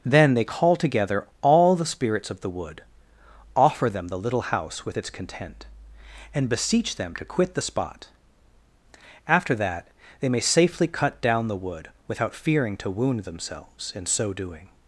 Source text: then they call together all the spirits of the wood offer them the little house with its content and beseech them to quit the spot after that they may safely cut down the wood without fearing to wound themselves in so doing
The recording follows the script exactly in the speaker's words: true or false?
true